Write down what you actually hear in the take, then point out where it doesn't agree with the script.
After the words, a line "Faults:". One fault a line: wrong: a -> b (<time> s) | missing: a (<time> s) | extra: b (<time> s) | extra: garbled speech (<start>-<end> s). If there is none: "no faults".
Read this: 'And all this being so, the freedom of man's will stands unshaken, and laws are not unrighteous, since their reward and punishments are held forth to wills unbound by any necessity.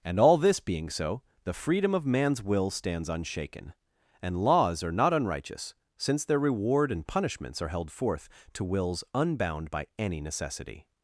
'And all this being so, the freedom of man's will stands unshaken, and laws are not unrighteous, since their reward and punishments are held forth to wills unbound by any necessity.
Faults:
no faults